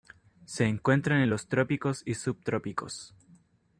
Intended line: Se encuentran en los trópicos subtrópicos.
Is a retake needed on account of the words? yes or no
yes